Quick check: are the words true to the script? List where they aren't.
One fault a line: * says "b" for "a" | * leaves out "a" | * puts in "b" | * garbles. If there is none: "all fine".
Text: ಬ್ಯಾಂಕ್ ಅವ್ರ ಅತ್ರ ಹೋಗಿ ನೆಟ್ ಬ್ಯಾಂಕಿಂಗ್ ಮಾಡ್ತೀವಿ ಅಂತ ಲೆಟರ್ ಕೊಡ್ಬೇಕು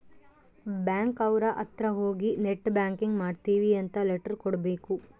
all fine